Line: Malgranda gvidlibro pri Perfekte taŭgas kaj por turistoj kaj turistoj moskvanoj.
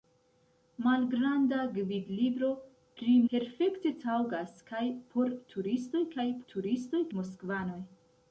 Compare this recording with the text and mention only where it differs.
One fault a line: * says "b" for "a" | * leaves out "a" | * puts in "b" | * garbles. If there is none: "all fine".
all fine